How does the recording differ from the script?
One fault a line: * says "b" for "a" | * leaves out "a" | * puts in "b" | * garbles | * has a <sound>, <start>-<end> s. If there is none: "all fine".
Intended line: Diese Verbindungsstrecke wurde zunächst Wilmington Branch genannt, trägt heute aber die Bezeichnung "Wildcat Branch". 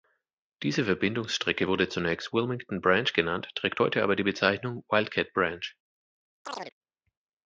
* has a chirp, 6.4-6.7 s